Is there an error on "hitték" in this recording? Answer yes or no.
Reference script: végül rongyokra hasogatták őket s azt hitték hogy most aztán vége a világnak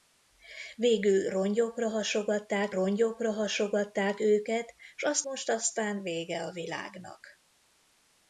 yes